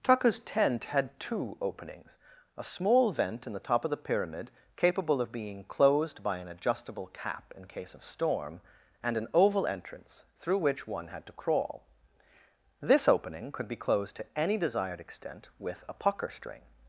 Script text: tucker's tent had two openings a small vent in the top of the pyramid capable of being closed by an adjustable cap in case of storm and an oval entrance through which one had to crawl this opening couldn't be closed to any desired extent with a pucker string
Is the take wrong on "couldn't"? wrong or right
wrong